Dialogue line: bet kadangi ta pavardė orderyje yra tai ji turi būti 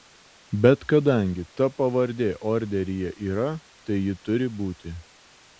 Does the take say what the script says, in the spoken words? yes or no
yes